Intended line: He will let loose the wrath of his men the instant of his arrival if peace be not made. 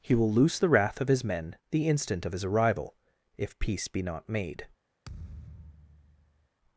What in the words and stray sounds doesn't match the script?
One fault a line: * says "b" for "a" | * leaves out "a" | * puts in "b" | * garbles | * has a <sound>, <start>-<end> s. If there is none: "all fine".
* leaves out "let"
* has a thud, 5.0-6.5 s